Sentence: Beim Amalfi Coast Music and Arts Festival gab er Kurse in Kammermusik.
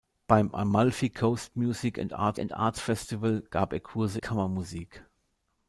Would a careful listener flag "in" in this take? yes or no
yes